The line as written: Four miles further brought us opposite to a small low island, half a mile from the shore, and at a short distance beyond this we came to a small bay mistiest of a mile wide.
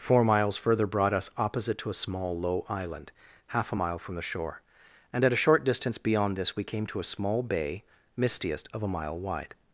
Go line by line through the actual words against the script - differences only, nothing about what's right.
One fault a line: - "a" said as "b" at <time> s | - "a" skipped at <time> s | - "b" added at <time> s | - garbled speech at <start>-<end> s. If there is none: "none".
none